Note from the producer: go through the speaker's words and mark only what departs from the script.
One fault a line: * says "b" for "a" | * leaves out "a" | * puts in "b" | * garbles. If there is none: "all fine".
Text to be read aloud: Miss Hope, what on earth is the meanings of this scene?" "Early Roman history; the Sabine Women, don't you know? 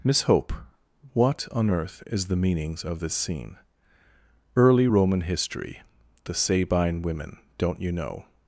all fine